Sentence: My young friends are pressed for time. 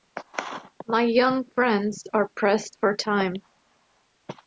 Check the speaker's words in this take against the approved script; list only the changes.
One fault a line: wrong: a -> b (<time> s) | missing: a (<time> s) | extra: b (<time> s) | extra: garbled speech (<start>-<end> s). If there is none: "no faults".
no faults